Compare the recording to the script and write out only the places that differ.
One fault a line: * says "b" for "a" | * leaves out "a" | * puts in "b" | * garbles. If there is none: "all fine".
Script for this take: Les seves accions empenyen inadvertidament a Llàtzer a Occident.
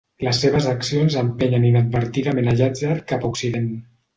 * puts in "cap"